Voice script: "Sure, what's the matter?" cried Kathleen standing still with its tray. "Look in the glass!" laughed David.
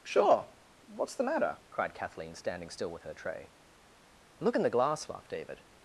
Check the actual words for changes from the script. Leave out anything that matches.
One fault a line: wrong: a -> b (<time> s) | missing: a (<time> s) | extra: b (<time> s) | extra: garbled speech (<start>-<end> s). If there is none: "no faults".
wrong: its -> her (3.0 s)